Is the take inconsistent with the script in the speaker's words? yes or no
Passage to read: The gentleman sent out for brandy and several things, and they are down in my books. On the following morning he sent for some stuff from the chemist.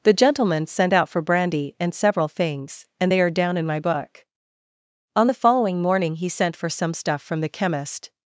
yes